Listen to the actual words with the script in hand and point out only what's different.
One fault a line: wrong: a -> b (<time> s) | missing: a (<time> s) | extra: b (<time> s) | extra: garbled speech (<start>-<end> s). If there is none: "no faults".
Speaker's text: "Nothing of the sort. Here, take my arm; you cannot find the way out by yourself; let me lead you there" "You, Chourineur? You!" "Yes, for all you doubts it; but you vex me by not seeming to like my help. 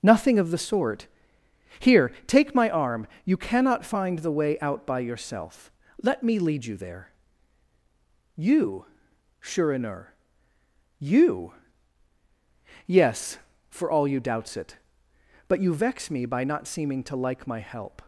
no faults